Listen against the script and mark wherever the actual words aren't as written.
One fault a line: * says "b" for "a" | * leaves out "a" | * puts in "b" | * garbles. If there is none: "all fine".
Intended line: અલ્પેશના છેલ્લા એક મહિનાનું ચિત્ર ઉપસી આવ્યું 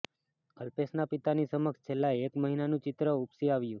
* puts in "પિતાની સમક્ષ"